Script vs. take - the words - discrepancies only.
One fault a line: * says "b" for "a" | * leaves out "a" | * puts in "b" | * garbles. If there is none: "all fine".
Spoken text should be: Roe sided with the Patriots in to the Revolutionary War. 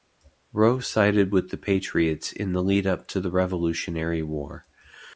* puts in "the lead up"